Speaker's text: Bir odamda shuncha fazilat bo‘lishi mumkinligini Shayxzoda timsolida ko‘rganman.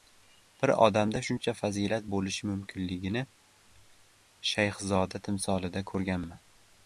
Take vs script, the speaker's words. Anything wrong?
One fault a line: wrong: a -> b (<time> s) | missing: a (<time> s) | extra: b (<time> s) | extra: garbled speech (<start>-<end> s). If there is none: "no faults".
no faults